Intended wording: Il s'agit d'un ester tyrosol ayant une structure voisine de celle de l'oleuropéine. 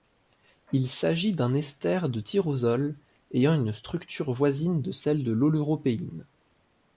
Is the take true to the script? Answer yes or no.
no